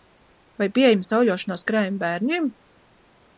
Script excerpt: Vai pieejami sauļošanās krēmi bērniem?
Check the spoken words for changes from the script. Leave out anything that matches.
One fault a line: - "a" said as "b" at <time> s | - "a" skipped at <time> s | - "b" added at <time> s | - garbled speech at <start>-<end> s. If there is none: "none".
none